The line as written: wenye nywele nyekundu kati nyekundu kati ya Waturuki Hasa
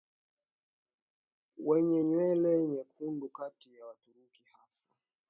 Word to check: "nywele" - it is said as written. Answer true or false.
true